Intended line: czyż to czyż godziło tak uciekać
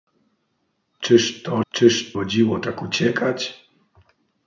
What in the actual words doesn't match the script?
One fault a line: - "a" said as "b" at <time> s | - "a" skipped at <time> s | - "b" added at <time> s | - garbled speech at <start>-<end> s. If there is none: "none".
none